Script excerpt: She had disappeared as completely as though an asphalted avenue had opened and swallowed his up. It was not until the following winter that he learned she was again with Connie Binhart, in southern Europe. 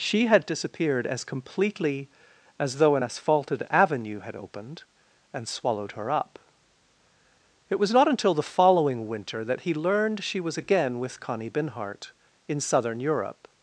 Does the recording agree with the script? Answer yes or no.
no